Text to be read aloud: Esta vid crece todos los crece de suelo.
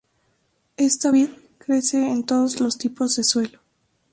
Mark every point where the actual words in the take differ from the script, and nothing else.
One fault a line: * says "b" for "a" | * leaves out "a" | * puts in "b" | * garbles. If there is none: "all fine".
* puts in "en"
* says "tipos" for "crece"